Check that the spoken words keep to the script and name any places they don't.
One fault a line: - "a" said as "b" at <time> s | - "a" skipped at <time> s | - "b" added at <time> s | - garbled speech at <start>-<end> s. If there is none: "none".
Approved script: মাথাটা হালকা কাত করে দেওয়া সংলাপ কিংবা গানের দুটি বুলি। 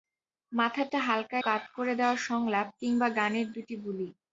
none